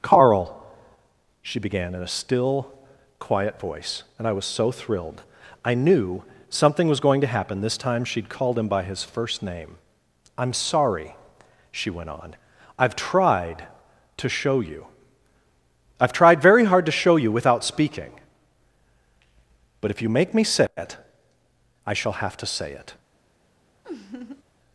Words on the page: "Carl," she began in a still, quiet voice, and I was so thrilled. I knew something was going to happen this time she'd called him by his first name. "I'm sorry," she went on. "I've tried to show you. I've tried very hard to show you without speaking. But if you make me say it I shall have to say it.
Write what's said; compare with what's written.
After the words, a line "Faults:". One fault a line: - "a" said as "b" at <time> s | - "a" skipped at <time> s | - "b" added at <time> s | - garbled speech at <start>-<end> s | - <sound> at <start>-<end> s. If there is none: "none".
"Carl," she began in a still, quiet voice, and I was so thrilled. I knew something was going to happen this time she'd called him by his first name. "I'm sorry," she went on. "I've tried to show you. I've tried very hard to show you without speaking. But if you make me say it I shall have to say it.
Faults:
- laugh at 23.8-24.4 s